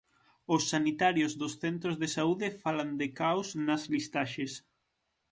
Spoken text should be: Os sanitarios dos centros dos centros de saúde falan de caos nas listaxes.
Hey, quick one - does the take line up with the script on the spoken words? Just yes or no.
no